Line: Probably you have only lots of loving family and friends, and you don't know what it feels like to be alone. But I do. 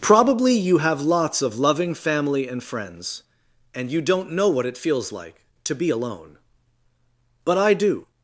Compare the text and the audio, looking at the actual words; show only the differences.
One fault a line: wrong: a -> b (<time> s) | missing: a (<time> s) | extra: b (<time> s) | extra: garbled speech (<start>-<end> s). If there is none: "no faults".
missing: only (1.0 s)